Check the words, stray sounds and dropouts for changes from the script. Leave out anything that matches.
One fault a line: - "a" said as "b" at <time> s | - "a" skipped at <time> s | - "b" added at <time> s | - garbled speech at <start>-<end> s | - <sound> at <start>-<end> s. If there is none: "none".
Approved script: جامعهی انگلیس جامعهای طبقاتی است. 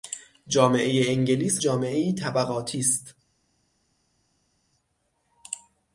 none